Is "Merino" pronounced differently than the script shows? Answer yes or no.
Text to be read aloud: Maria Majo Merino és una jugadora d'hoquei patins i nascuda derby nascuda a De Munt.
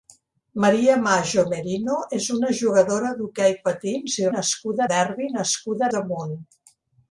no